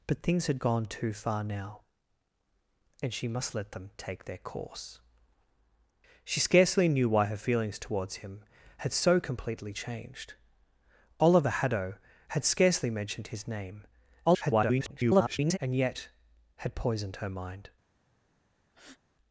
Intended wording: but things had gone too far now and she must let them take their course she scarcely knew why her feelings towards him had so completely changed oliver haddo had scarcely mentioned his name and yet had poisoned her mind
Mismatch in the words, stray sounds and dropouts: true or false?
true